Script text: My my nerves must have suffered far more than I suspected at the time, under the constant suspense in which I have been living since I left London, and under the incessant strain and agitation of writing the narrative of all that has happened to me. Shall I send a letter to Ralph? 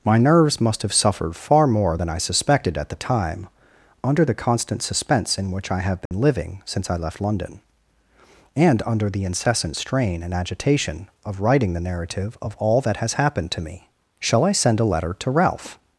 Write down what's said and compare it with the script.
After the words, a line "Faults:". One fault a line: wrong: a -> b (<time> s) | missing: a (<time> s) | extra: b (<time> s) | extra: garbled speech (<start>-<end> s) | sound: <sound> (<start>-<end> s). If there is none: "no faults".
My nerves must have suffered far more than I suspected at the time, under the constant suspense in which I have been living since I left London, and under the incessant strain and agitation of writing the narrative of all that has happened to me. Shall I send a letter to Ralph?
Faults:
missing: my (0.2 s)
sound: dropout (6.1-6.1 s)